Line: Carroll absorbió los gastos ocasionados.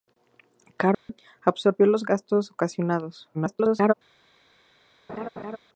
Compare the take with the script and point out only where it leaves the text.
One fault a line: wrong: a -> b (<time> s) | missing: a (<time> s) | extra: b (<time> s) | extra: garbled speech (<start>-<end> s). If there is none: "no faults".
extra: garbled speech (3.3-3.9 s)